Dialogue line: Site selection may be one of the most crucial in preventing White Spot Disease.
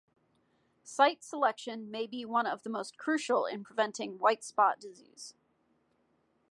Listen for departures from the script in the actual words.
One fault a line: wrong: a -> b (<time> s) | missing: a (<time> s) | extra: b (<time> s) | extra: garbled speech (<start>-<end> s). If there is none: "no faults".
no faults